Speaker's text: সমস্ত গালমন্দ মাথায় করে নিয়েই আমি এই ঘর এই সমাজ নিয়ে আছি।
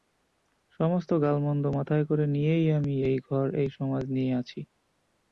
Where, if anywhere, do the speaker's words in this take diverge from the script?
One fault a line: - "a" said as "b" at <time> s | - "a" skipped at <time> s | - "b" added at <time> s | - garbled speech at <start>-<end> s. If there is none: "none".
none